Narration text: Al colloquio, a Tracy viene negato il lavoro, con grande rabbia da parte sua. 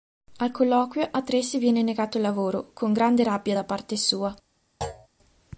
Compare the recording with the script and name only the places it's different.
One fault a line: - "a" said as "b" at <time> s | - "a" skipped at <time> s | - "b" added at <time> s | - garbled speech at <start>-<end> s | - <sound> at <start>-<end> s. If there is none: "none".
- thud at 4.8-5.1 s